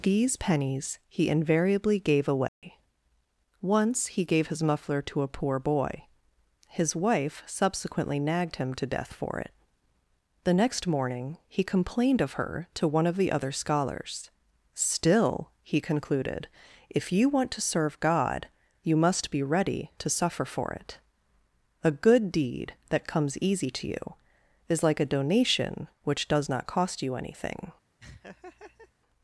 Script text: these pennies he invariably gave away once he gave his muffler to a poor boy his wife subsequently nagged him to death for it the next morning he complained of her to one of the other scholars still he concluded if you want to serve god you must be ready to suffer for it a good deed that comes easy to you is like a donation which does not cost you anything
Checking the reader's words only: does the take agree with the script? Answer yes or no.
yes